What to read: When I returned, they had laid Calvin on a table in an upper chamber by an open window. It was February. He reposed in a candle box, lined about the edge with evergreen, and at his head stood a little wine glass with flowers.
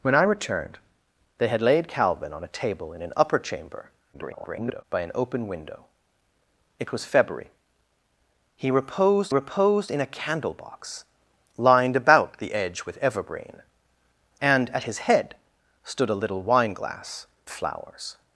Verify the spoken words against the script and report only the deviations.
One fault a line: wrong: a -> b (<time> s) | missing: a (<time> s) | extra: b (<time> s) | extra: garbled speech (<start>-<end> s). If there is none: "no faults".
extra: garbled speech (4.1-4.8 s)
extra: reposed (9.3 s)
missing: with (17.3 s)